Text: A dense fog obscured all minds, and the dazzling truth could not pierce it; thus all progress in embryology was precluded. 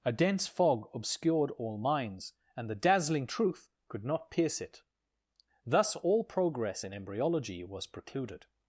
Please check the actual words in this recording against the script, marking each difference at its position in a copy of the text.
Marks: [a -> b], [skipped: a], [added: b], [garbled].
A dense fog obscured all minds, and the dazzling truth could not pierce it; thus all progress in embryology was precluded.